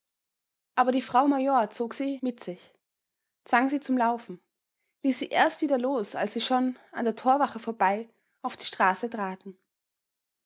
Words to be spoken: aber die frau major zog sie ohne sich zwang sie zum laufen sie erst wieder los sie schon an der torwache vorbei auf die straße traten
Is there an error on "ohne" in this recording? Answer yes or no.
yes